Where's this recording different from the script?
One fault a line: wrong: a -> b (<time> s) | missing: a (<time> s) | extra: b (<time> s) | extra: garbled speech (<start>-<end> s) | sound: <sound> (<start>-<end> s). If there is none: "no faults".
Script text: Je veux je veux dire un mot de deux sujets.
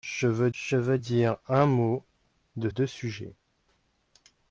no faults